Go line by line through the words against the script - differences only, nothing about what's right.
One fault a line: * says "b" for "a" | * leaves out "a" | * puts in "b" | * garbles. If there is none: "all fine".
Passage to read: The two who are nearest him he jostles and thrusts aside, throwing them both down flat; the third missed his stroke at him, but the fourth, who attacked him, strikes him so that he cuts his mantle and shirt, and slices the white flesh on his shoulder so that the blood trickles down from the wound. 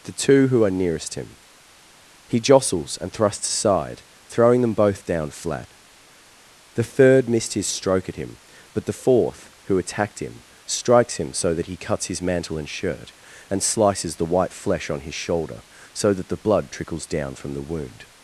all fine